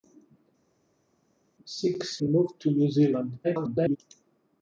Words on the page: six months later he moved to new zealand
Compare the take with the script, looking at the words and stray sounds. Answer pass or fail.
fail